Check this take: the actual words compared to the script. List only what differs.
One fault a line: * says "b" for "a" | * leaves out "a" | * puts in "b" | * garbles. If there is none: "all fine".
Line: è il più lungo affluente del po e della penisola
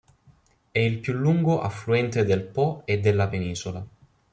all fine